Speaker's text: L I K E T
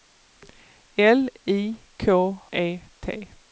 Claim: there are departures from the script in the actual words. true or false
false